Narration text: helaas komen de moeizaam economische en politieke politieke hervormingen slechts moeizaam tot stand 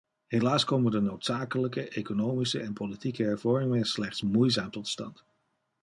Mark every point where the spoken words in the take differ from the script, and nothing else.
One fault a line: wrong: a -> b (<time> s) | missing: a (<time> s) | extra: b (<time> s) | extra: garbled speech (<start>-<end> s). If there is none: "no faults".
wrong: moeizaam -> noodzakelijke (1.0 s)
missing: politieke (3.2 s)